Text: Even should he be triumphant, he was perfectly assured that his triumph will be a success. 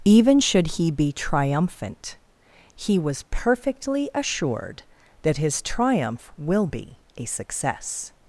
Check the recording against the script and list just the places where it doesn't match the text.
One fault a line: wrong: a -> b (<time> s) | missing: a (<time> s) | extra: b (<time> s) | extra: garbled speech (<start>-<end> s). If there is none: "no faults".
no faults